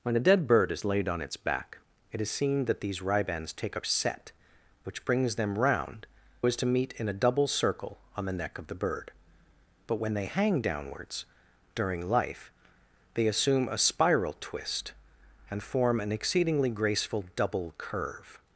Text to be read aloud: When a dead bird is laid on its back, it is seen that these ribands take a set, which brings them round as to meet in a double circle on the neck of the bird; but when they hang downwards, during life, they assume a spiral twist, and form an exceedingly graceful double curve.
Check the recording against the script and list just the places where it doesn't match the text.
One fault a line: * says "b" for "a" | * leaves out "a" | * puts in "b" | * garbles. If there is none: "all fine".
all fine